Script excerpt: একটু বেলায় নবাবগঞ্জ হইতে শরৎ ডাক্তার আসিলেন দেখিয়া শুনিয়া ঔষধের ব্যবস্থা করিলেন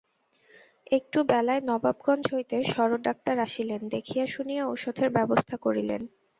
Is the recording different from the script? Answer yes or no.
no